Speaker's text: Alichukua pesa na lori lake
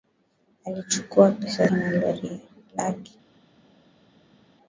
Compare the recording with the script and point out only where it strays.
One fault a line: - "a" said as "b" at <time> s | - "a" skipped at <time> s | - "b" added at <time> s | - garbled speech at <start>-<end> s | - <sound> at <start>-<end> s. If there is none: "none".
none